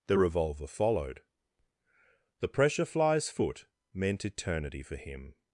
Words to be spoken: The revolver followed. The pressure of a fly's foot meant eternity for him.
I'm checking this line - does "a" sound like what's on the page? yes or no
no